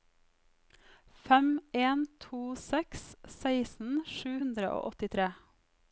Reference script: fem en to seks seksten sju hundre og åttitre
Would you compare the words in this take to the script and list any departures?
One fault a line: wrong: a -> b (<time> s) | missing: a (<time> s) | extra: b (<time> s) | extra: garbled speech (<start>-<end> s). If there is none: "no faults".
no faults